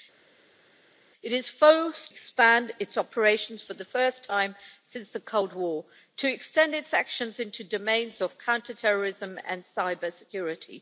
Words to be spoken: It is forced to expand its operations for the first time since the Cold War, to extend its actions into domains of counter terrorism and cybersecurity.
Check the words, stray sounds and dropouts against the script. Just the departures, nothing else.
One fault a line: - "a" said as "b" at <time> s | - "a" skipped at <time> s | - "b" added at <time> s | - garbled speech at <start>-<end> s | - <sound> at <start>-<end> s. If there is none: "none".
- "to" skipped at 2.1 s